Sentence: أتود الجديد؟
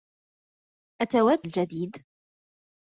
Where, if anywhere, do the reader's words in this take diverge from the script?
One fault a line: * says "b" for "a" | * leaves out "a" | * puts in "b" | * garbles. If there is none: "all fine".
all fine